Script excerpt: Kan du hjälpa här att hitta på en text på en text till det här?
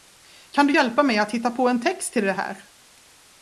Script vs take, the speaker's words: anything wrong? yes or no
yes